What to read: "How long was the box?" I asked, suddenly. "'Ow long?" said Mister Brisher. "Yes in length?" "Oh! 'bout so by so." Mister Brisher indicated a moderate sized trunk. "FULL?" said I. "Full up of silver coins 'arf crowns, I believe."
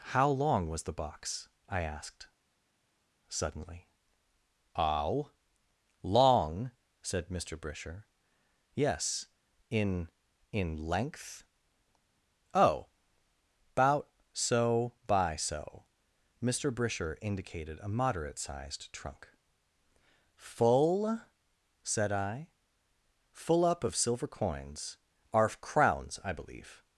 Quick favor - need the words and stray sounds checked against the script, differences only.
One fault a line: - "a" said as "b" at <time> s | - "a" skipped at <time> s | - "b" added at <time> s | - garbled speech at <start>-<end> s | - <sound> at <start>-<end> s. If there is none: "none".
- "in" added at 10.5 s